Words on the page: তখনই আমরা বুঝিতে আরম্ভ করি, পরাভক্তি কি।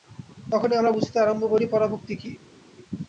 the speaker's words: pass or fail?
pass